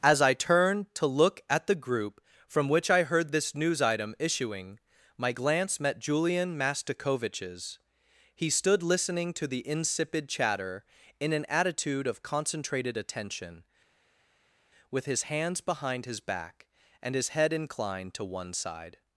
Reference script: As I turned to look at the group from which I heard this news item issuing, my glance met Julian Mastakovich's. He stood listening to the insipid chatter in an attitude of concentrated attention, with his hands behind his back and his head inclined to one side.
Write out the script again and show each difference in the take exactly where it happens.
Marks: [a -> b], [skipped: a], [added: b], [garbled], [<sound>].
As I turned to look at the group from which I heard this news item issuing, my glance met Julian Mastakovich's. He stood listening to the insipid chatter in an attitude of concentrated attention, with his hands behind his back and his head inclined to one side.